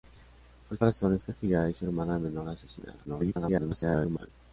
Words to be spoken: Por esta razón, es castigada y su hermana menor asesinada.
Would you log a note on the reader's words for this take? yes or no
yes